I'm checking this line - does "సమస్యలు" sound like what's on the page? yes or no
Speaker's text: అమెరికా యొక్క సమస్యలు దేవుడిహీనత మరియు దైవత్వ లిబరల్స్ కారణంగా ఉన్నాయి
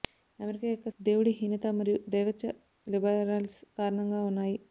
no